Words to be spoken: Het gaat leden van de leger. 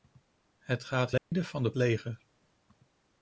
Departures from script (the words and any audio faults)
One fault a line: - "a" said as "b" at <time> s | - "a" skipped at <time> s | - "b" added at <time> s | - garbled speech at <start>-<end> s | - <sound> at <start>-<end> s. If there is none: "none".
- dropout at 1.2-1.3 s